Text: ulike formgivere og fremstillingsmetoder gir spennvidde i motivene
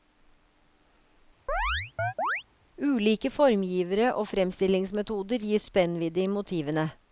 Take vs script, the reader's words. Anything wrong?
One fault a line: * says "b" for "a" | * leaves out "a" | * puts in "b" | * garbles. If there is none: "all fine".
all fine